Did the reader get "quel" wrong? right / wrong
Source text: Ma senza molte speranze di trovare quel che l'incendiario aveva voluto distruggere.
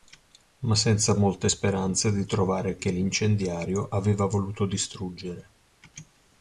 wrong